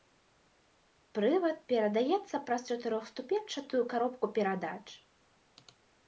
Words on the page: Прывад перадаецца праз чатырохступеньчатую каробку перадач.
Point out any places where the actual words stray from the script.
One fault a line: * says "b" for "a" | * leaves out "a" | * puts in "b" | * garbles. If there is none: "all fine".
all fine